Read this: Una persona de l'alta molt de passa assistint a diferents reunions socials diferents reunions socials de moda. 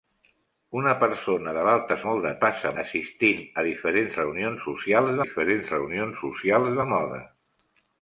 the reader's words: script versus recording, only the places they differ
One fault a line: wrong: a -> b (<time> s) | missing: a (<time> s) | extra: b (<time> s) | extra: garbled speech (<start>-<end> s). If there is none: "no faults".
no faults